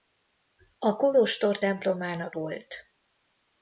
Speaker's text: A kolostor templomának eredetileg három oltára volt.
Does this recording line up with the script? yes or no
no